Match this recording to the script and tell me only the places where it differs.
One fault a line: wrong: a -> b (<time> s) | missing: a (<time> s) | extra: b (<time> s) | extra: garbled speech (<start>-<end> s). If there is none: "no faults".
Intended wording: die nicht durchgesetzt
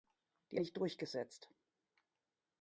no faults